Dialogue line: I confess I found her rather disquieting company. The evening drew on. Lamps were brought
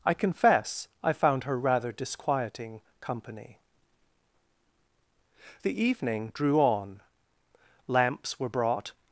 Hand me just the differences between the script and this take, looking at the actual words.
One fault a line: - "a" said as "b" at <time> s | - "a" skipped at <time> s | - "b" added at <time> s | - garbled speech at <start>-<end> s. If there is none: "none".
none